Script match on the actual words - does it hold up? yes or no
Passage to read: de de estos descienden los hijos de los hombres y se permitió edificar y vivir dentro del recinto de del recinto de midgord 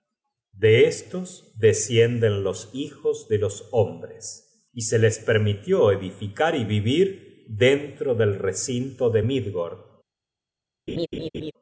no